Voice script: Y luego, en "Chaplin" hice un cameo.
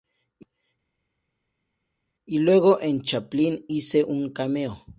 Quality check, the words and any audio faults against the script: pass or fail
pass